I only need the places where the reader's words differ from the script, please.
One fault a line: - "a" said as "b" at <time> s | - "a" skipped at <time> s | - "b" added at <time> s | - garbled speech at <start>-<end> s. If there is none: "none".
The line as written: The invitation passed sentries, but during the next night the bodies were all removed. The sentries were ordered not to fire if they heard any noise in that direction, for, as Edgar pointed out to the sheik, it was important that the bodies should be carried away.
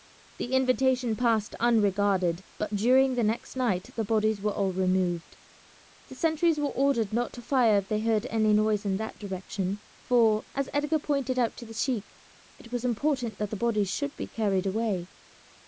- "sentries" said as "unregarded" at 1.6 s